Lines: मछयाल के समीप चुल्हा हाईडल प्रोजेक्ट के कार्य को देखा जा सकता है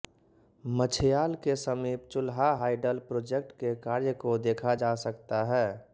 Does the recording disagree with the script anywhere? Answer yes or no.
no